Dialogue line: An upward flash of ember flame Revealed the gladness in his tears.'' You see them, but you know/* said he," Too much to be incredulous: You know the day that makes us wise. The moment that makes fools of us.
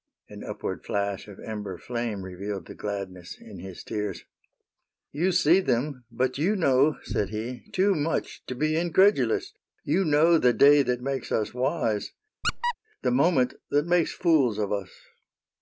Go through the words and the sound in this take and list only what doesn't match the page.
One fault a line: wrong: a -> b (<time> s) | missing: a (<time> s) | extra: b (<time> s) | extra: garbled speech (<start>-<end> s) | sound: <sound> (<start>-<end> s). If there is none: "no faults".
sound: squeak (12.4-12.7 s)